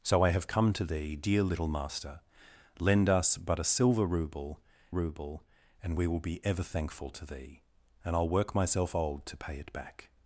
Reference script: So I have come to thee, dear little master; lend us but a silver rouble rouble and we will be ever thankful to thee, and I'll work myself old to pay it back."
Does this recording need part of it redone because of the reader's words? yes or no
no